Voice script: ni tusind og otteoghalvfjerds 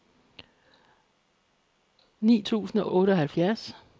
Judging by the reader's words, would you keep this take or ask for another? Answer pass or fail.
fail